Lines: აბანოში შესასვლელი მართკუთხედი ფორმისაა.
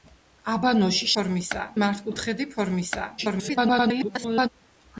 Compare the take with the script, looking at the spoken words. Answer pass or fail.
fail